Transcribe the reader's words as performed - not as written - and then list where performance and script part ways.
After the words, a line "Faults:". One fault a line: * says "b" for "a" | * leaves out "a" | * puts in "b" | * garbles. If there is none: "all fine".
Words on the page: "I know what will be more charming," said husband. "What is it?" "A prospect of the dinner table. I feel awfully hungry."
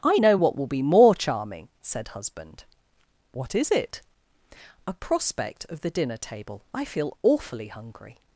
"I know what will be more charming," said husband. "What is it?" "A prospect of the dinner table. I feel awfully hungry."
Faults:
all fine